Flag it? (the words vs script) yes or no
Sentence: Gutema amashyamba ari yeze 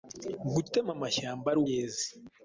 no